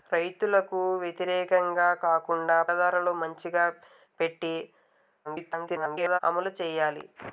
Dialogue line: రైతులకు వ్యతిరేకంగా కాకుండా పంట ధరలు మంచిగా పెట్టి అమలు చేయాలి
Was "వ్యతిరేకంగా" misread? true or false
false